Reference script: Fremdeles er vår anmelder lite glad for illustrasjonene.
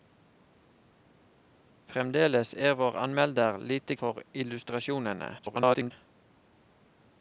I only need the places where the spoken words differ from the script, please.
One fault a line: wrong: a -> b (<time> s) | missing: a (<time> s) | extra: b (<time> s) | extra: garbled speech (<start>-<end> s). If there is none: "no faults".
missing: glad (4.0 s)
extra: garbled speech (5.4-5.9 s)